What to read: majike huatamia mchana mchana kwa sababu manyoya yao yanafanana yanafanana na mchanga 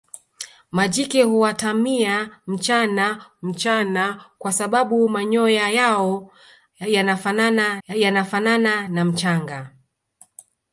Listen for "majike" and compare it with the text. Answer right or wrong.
right